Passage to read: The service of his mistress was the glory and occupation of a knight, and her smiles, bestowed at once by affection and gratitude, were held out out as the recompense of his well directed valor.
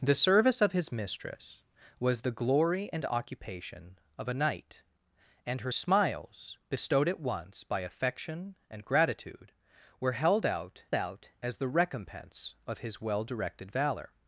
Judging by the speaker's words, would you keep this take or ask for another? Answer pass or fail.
pass